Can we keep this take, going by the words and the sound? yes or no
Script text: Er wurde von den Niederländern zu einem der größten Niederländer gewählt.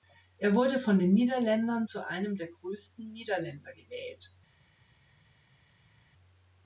yes